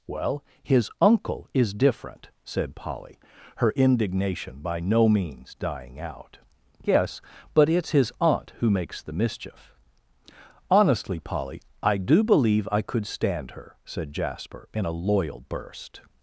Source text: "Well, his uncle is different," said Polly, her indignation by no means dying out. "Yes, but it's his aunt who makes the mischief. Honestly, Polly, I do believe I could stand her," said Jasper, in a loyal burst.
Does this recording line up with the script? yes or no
yes